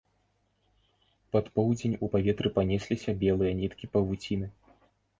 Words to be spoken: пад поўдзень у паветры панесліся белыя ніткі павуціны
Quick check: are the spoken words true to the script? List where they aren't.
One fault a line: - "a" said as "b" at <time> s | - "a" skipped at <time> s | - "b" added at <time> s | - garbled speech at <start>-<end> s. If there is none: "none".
none